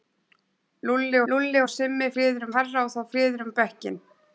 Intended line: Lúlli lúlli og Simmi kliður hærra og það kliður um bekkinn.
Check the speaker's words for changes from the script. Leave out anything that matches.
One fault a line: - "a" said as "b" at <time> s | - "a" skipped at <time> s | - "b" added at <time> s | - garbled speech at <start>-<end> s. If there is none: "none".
none